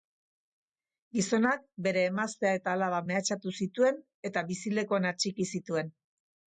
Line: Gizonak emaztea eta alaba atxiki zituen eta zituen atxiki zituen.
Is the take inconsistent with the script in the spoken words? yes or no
yes